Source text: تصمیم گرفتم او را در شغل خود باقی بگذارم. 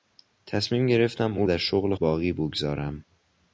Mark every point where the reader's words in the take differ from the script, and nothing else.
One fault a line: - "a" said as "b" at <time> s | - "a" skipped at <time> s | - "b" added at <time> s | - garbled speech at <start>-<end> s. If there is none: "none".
- "را" skipped at 1.5 s
- "خود" skipped at 1.9 s